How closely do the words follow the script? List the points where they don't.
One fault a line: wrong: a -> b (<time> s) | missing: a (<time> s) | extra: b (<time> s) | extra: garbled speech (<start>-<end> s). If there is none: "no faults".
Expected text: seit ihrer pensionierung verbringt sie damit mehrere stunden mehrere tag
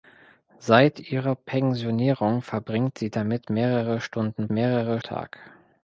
no faults